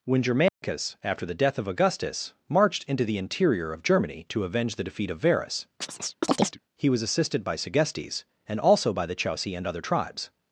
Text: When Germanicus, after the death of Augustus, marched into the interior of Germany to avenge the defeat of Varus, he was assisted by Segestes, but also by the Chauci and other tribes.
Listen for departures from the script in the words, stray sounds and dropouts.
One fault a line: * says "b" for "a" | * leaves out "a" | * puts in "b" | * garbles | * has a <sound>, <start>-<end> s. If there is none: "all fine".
* has a dropout, 0.5-0.6 s
* has a chirp, 5.8-6.6 s
* says "and" for "but"